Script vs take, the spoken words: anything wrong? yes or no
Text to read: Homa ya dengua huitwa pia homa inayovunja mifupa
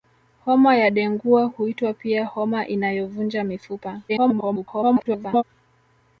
yes